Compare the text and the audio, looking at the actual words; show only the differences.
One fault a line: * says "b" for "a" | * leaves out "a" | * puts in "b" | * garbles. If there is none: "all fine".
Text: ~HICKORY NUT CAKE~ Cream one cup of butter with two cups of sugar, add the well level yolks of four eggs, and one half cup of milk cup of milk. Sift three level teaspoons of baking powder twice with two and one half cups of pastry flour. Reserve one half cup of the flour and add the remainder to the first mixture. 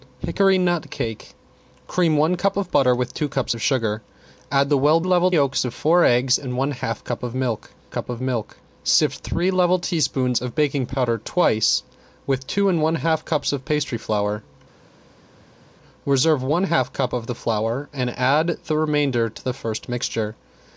all fine